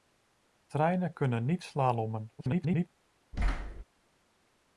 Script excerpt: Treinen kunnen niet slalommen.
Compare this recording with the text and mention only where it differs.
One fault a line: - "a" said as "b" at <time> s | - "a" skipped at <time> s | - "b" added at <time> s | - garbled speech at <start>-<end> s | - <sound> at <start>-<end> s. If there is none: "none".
- garbled speech at 2.4-2.9 s
- thud at 3.3-3.8 s